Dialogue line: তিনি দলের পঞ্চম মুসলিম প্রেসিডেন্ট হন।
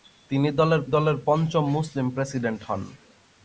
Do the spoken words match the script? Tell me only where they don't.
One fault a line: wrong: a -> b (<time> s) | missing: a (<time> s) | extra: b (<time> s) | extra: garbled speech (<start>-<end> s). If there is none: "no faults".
extra: দলের (0.9 s)